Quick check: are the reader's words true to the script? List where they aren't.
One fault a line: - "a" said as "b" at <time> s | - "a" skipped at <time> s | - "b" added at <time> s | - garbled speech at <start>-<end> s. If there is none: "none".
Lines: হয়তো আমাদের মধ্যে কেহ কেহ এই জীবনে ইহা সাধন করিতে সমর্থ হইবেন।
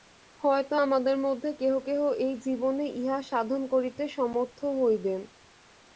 none